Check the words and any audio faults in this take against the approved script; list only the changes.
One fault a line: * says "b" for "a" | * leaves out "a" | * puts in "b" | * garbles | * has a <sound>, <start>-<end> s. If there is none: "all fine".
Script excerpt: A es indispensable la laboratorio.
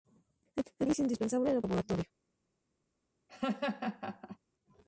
* has a laugh, 3.3-4.4 s